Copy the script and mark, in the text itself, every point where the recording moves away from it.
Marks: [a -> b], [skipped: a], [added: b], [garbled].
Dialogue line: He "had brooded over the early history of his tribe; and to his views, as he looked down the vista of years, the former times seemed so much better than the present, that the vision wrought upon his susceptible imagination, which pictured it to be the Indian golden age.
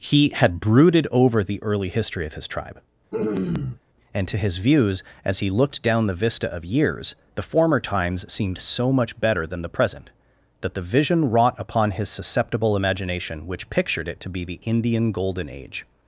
He "had brooded over the early history of his tribe; and to his views, as he looked down the vista of years, the former times seemed so much better than the present, that the vision wrought upon his susceptible imagination, which pictured it to be the Indian golden age.